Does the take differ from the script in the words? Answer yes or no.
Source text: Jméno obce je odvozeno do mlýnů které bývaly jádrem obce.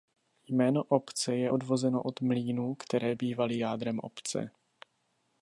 yes